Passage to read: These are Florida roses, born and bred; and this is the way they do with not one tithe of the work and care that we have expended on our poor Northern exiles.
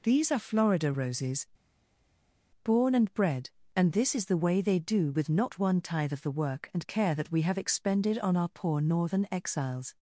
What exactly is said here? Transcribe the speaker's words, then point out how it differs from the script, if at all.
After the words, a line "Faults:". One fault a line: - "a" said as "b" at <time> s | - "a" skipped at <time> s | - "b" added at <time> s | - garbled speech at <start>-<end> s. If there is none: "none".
These are Florida roses, born and bred; and this is the way they do with not one tithe of the work and care that we have expended on our poor Northern exiles.
Faults:
none